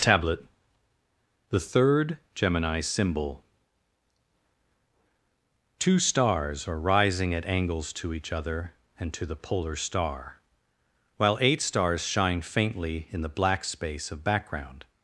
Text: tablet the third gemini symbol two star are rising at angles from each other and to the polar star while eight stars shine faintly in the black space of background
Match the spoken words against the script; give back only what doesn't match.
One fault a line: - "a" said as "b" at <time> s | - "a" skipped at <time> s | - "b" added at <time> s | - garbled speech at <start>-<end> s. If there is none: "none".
- "star" said as "stars" at 6.0 s
- "from" said as "to" at 7.9 s